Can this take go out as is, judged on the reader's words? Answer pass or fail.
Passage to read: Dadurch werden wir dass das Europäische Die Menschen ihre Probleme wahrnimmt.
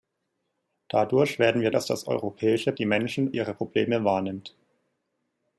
pass